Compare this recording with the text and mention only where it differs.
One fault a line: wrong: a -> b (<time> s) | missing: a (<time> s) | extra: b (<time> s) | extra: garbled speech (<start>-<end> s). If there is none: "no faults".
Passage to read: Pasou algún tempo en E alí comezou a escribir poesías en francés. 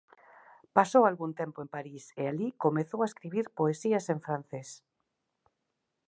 extra: París (1.7 s)